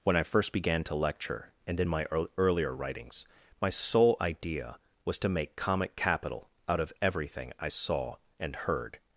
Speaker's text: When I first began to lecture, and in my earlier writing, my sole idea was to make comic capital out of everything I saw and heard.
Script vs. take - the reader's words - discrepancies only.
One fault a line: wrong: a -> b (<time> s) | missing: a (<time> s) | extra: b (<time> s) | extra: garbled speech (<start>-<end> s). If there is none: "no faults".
wrong: writing -> writings (2.7 s)